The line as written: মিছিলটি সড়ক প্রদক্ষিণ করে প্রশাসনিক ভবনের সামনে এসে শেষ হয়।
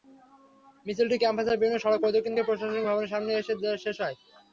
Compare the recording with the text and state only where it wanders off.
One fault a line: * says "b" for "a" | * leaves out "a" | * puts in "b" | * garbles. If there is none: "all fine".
* puts in "ক্যাম্পাসের বিভিন্ন"